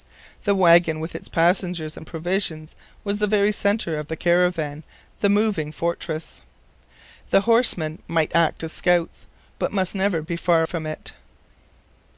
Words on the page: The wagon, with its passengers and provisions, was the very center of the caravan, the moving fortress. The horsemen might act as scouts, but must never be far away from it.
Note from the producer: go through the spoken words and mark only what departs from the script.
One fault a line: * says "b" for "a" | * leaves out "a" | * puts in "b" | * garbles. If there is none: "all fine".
* leaves out "away"